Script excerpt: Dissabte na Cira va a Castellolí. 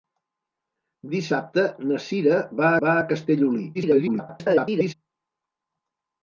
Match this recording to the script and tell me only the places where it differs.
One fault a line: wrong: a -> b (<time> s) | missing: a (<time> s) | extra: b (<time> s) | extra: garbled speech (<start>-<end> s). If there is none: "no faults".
extra: va (2.9 s)
extra: garbled speech (3.7-4.9 s)